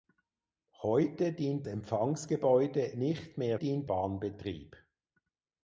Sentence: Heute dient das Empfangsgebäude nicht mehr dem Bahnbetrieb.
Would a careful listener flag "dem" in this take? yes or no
yes